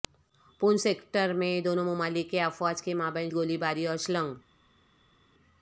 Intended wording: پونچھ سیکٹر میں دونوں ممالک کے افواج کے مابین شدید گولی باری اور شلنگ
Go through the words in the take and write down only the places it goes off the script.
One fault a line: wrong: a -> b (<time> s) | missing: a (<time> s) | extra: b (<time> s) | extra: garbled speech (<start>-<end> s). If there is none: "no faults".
missing: شدید (3.3 s)